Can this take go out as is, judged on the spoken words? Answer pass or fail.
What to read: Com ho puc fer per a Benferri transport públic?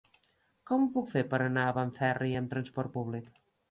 fail